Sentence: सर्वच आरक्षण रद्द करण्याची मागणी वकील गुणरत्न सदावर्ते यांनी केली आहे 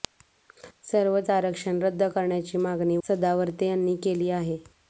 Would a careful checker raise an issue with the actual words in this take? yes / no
yes